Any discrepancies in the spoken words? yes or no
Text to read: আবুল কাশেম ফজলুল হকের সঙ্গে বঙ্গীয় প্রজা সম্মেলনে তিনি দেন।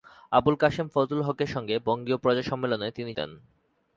no